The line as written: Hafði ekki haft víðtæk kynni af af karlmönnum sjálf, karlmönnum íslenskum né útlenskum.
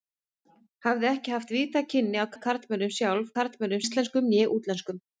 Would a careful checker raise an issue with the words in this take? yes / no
no